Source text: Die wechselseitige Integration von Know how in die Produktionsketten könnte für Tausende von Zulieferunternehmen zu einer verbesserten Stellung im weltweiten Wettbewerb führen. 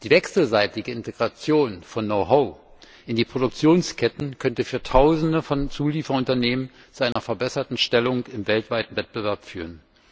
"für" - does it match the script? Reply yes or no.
yes